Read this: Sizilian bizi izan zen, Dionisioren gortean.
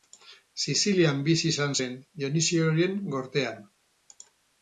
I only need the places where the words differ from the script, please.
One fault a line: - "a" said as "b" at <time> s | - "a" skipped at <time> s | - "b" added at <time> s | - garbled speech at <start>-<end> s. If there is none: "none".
none